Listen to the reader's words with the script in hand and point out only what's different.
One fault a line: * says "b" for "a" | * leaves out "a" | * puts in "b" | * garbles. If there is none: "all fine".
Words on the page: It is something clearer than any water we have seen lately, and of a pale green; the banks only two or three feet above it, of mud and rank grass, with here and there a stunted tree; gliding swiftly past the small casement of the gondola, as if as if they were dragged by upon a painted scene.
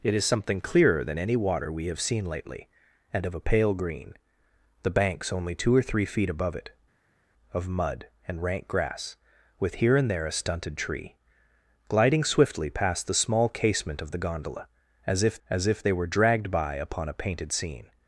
all fine